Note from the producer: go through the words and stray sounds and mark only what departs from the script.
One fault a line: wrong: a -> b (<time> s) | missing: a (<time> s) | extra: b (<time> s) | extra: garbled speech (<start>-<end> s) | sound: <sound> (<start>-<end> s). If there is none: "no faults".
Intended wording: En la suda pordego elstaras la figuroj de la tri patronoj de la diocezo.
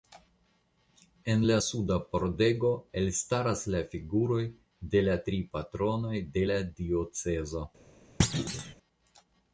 sound: thud (8.2-8.7 s)